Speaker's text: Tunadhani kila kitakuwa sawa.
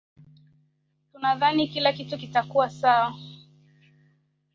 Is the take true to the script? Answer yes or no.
no